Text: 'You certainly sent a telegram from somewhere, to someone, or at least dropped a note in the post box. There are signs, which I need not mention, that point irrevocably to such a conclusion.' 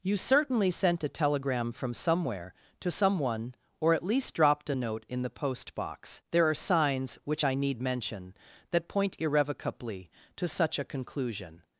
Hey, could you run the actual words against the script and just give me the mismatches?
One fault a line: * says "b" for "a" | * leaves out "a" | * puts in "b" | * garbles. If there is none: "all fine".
* leaves out "not"